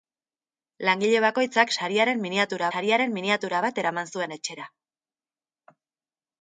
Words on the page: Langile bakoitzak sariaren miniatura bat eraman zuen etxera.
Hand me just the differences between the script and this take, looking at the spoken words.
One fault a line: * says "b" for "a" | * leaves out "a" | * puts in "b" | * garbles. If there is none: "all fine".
* puts in "sariaren miniatura"